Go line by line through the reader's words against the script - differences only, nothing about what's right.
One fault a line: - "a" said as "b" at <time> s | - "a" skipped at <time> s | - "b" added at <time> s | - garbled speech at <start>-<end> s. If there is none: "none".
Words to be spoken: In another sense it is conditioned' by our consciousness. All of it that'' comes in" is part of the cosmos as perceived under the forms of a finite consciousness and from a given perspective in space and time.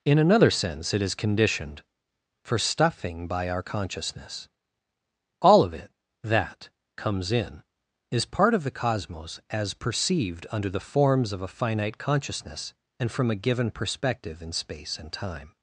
- "for stuffing" added at 2.4 s